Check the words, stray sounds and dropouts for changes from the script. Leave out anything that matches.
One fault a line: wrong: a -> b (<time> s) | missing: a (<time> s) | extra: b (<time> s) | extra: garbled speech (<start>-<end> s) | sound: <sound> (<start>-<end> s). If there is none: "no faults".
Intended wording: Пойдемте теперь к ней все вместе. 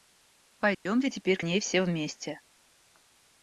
sound: dropout (0.7-0.9 s)